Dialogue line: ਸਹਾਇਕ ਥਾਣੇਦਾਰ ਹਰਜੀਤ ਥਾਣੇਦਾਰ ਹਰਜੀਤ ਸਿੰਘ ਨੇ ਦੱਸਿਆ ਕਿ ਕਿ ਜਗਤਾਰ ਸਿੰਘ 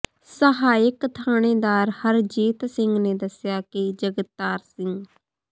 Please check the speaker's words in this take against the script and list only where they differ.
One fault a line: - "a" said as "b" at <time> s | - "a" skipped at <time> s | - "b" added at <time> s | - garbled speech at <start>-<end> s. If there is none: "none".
- "ਥਾਣੇਦਾਰ ਹਰਜੀਤ" skipped at 2.6 s
- "ਕਿ" skipped at 3.9 s